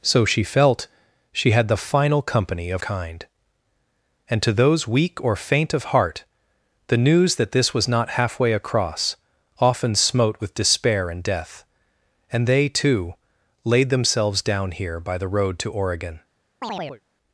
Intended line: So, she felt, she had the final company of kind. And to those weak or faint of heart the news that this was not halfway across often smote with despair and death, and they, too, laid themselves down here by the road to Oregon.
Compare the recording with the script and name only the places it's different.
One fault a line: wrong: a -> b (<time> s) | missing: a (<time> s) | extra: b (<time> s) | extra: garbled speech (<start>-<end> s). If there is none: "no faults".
no faults